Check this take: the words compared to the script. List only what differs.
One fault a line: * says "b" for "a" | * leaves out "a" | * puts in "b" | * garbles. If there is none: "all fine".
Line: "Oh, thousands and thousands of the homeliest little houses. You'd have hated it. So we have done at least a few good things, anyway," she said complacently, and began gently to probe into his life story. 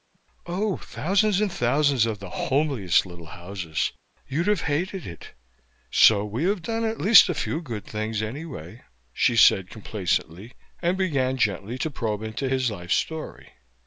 all fine